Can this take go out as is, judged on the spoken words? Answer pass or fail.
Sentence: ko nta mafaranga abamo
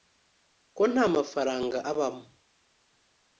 pass